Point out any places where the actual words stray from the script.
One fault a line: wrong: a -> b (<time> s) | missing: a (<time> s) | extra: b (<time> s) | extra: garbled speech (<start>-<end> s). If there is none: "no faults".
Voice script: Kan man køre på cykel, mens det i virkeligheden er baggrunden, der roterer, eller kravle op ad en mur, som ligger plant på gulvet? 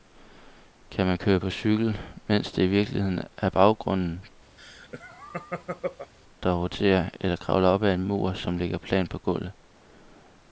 no faults